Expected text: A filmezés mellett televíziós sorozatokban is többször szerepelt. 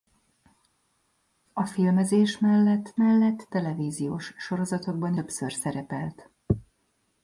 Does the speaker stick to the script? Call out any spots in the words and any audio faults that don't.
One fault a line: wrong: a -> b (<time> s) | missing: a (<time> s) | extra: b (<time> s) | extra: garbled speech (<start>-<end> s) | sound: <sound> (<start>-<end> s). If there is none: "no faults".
extra: mellett (2.9 s)
missing: is (5.1 s)